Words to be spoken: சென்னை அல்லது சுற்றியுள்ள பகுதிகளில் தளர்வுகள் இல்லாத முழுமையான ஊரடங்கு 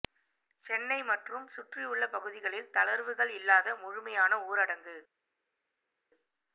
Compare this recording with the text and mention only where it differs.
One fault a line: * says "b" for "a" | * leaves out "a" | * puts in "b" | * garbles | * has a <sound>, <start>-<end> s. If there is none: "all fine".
* says "மற்றும்" for "அல்லது"